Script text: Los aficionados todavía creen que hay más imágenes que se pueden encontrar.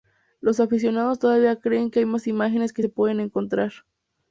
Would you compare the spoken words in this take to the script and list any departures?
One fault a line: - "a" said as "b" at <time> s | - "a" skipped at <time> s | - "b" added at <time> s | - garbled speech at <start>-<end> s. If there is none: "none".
none